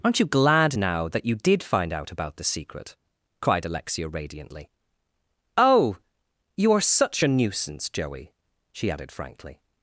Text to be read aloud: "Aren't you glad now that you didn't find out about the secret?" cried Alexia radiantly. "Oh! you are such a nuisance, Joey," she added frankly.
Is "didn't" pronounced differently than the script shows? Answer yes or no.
yes